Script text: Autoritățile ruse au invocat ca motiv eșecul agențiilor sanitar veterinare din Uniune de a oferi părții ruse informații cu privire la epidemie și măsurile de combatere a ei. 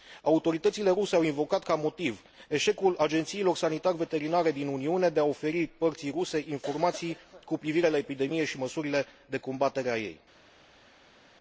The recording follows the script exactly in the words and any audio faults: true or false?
true